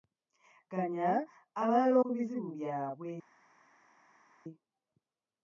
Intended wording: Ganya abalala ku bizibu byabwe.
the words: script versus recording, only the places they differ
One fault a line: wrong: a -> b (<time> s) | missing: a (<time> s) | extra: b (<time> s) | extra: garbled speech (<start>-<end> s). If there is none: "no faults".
no faults